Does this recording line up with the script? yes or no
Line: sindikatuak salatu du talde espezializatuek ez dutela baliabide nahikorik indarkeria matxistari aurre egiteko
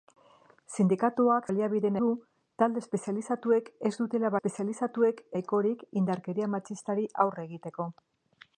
no